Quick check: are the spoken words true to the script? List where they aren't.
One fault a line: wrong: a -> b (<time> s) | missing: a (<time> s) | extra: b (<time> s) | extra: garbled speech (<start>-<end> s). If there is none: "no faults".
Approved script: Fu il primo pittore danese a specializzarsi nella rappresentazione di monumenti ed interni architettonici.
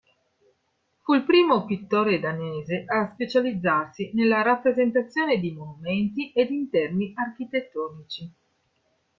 no faults